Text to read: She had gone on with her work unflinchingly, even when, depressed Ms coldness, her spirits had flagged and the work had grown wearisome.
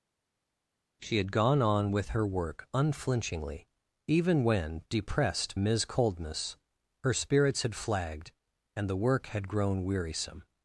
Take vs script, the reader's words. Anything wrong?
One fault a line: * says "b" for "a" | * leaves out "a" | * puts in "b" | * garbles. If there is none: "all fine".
all fine